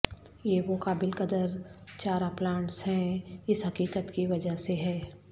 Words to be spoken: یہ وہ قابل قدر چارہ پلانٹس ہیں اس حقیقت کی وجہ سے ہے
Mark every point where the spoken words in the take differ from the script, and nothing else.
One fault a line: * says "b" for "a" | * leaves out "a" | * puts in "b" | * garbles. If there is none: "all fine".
all fine